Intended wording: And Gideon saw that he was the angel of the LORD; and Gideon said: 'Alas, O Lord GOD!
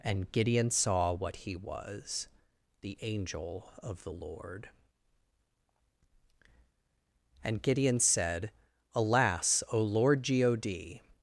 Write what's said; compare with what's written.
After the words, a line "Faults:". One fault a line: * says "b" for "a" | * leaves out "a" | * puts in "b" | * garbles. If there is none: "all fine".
And Gideon saw what he was the angel of the LORD; and Gideon said: 'Alas, O Lord GOD!
Faults:
* says "what" for "that"